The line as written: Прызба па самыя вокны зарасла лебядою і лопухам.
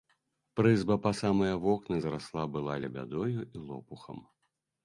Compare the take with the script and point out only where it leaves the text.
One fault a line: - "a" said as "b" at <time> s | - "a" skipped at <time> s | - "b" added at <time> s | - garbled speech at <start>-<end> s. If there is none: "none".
- "была" added at 2.6 s